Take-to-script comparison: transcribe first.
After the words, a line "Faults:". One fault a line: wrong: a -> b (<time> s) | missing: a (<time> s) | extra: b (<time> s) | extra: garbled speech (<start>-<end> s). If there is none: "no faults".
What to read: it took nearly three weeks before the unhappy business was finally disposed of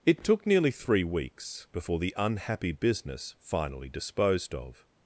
it took nearly three weeks before the unhappy business finally disposed of
Faults:
missing: was (3.4 s)